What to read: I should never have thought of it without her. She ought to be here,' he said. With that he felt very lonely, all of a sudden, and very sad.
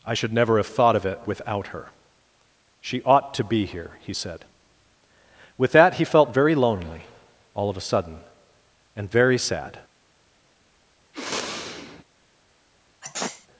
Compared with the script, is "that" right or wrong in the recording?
right